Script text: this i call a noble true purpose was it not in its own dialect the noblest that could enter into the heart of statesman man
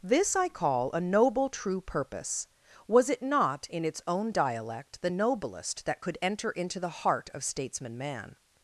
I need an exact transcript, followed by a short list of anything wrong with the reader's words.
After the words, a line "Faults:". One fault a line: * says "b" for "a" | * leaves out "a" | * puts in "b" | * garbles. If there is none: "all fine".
this i call a noble true purpose was it not in its own dialect the noblest that could enter into the heart of statesman man
Faults:
all fine